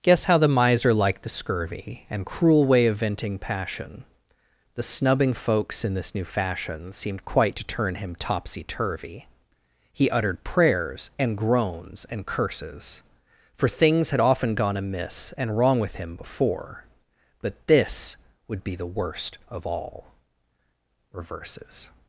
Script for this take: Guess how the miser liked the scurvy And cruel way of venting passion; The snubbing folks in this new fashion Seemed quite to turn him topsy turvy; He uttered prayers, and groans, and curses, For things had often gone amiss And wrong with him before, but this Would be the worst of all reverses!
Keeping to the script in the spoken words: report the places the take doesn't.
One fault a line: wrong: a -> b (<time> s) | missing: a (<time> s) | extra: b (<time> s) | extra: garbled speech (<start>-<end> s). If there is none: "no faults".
no faults